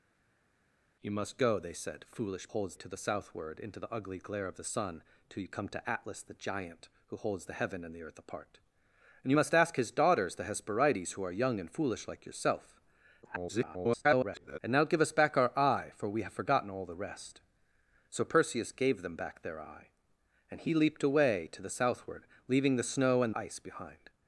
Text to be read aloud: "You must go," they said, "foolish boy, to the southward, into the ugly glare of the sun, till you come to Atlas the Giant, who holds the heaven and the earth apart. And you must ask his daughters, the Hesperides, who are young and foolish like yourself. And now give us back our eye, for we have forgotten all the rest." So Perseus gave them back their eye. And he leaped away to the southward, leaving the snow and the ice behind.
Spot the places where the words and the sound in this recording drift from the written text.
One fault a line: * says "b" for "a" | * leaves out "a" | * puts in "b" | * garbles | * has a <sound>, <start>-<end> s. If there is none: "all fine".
* says "holds" for "boy"
* garbles
* leaves out "the"